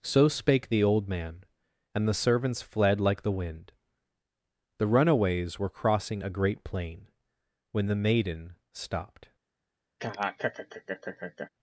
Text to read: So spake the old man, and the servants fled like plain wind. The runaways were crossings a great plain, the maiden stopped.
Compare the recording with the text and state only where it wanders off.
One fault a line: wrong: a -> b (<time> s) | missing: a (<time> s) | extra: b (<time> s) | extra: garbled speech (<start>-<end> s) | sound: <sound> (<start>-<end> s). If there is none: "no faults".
wrong: plain -> the (3.2 s)
wrong: crossings -> crossing (5.7 s)
extra: when (7.7 s)
sound: laugh (10.0-11.5 s)